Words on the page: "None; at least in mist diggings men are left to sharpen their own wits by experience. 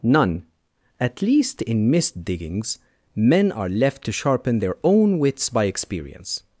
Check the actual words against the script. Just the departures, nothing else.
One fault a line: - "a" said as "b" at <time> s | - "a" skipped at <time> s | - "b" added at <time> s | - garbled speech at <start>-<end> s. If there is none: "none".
none